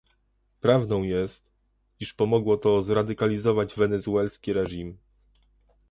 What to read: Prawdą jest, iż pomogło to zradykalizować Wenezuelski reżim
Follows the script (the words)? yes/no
yes